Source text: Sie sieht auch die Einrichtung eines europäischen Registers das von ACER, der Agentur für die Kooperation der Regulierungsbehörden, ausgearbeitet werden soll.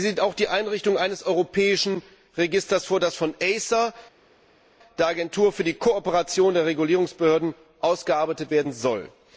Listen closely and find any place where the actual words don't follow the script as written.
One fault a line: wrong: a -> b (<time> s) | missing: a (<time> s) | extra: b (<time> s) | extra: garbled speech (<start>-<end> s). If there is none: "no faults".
extra: vor (2.9 s)